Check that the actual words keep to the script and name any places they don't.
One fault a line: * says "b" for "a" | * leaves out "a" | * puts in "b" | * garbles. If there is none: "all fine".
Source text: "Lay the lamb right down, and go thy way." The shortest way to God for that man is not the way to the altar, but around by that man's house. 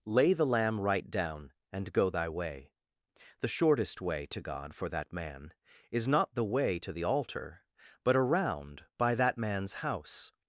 all fine